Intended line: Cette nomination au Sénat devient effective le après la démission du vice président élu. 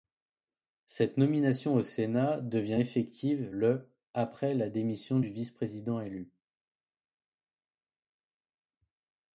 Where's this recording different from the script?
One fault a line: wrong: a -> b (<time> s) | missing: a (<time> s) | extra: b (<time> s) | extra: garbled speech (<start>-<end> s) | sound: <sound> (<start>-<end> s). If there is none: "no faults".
no faults